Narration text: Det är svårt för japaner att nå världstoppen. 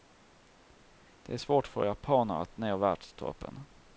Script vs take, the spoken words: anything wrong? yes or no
no